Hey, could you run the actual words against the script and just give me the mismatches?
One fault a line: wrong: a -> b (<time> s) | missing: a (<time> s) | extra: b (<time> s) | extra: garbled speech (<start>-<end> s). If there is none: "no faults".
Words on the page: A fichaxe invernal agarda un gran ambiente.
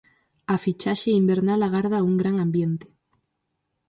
no faults